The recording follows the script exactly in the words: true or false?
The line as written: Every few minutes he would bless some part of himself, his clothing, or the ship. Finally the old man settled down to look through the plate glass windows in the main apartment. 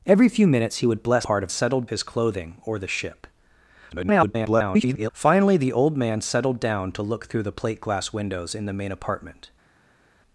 false